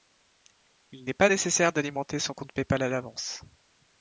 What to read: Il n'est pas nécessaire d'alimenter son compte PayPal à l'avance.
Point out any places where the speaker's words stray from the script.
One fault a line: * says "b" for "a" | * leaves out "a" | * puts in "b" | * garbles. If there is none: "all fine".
all fine